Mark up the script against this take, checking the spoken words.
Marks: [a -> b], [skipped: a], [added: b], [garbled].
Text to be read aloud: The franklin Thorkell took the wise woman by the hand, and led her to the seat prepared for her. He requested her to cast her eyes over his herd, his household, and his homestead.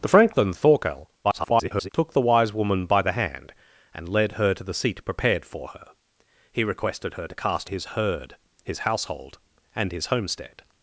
The franklin Thorkell [garbled] took the wise woman by the hand, and led her to the seat prepared for her. He requested her to cast [skipped: her eyes over] his herd, his household, and his homestead.